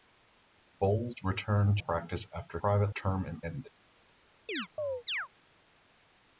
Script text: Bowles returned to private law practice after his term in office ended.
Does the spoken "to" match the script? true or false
false